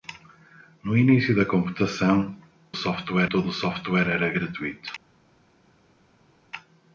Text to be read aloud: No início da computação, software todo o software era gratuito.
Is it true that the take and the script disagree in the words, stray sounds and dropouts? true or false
false